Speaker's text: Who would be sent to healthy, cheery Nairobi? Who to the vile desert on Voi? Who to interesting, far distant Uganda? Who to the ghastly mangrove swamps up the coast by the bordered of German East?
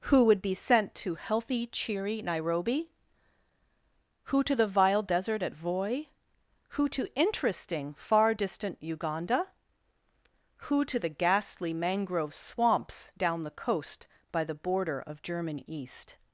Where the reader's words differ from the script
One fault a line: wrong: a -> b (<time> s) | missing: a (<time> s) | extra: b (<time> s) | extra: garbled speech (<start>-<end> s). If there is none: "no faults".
wrong: on -> at (5.4 s)
wrong: up -> down (13.2 s)
wrong: bordered -> border (14.6 s)